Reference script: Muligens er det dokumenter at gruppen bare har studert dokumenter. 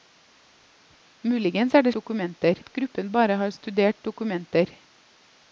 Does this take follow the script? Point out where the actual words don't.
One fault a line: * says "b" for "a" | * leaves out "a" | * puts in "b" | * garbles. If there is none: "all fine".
all fine